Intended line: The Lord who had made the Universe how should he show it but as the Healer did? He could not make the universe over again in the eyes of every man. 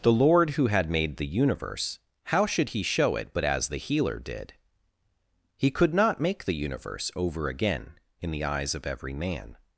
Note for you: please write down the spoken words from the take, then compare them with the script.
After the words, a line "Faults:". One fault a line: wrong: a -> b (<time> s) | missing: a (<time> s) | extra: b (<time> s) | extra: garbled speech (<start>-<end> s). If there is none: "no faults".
The Lord who had made the Universe how should he show it but as the Healer did? He could not make the universe over again in the eyes of every man.
Faults:
no faults